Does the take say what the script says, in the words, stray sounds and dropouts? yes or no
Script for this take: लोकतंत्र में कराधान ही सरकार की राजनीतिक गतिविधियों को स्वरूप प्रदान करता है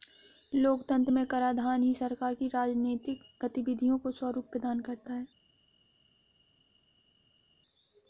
yes